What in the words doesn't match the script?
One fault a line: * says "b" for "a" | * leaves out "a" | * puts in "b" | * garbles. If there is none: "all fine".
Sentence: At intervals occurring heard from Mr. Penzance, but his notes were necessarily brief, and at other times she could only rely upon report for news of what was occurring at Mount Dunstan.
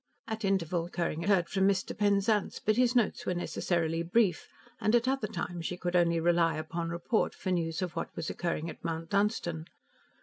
all fine